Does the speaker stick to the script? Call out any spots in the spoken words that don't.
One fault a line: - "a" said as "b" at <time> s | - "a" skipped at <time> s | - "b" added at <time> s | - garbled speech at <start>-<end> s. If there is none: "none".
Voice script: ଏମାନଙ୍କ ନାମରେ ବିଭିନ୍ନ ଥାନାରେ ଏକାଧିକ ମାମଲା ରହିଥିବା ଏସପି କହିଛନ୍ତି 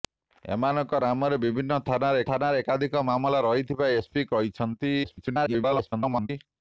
- "ଥାନାରେ" added at 2.3 s
- garbled speech at 5.0-6.3 s